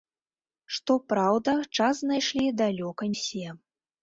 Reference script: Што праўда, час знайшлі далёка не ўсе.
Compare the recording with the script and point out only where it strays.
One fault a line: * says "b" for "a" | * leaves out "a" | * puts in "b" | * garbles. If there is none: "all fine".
* leaves out "не"